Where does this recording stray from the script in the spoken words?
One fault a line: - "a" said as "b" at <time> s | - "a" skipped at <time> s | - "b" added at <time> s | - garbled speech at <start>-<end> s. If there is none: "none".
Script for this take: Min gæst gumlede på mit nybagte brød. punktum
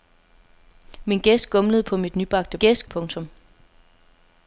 - "brød" said as "gæst" at 2.6 s